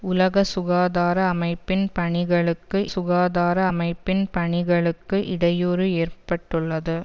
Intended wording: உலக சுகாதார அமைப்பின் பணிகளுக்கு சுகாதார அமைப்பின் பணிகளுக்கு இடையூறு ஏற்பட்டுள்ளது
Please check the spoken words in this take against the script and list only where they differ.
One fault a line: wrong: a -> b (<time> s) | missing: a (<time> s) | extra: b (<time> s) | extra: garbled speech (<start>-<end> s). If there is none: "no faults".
no faults